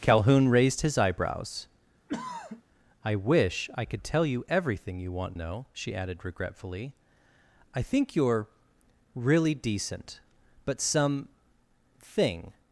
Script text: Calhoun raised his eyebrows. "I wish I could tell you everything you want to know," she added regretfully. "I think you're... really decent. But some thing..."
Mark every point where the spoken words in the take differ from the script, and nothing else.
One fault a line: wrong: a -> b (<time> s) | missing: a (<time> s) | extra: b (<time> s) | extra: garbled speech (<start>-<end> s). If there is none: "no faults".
missing: to (5.4 s)